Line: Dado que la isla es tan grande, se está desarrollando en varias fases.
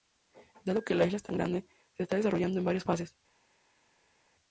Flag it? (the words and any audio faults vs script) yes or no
no